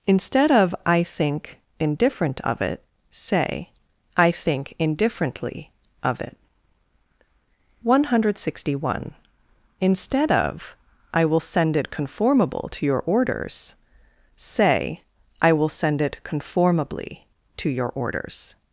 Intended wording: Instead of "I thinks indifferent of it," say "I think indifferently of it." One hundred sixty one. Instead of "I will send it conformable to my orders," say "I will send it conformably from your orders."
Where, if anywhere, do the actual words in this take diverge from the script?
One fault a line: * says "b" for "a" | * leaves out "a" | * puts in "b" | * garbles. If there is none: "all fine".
* says "think" for "thinks"
* says "your" for "my"
* says "to" for "from"